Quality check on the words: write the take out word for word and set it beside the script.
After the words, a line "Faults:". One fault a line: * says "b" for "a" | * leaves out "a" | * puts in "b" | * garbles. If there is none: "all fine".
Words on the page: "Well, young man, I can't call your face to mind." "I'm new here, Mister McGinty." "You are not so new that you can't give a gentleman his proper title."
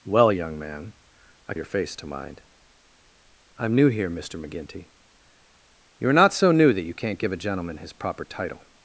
"Well, young man, I your face to mind." "I'm new here, Mister McGinty." "You are not so new that you can't give a gentleman his proper title."
Faults:
* leaves out "can't call"